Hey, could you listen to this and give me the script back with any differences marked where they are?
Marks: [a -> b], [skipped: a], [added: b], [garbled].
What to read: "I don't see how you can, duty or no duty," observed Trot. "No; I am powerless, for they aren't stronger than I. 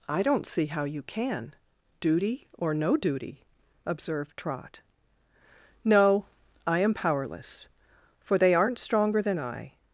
"I don't see how you can, duty or no duty," observed Trot. "No; I am powerless, for they aren't stronger than I.